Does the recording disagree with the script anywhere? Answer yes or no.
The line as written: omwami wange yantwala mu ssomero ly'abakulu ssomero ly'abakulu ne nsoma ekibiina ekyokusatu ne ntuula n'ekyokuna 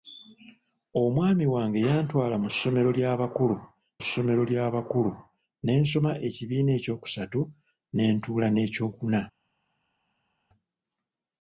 no